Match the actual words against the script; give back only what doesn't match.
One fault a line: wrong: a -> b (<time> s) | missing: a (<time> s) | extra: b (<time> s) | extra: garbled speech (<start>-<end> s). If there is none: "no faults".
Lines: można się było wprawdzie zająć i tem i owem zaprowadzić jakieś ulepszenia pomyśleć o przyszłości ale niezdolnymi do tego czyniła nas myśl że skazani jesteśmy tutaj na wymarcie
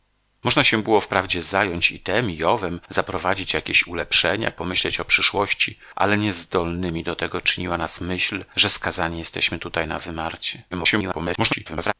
extra: garbled speech (10.7-11.9 s)